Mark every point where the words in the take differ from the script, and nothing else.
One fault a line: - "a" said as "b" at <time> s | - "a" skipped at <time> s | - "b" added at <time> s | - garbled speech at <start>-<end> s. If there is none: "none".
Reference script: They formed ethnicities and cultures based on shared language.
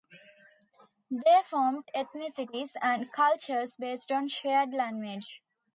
none